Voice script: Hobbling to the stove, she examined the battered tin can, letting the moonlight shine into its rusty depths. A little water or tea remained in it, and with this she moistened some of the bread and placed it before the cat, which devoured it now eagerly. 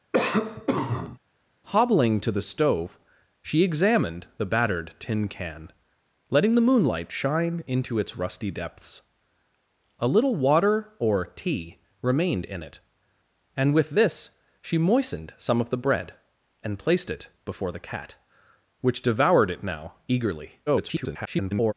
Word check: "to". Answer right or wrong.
right